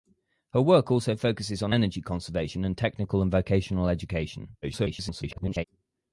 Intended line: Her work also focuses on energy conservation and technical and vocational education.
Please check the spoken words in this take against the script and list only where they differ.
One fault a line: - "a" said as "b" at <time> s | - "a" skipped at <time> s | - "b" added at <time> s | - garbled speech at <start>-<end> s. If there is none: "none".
- garbled speech at 4.6-5.6 s